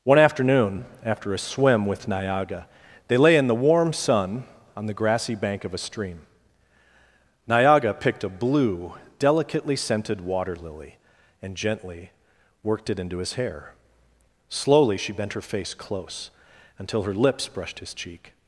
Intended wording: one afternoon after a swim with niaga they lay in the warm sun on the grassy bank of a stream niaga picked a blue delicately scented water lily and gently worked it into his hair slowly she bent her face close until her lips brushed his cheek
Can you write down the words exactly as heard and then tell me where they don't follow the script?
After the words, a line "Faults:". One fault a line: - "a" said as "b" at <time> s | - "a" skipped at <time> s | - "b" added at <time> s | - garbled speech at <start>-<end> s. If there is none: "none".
one afternoon after a swim with niaga they lay in the warm sun on the grassy bank of a stream niaga picked a blue delicately scented water lily and gently worked it into his hair slowly she bent her face close until her lips brushed his cheek
Faults:
none